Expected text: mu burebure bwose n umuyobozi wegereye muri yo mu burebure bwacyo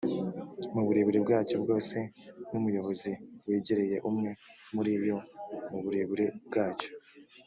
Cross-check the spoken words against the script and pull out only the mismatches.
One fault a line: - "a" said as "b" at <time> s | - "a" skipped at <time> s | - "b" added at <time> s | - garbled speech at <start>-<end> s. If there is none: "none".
- "bwacyo" added at 1.2 s
- "umwe" added at 4.1 s